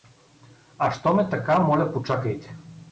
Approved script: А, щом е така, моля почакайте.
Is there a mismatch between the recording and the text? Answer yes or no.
no